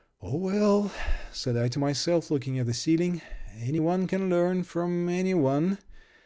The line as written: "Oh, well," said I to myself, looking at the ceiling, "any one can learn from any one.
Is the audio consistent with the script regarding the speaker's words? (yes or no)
yes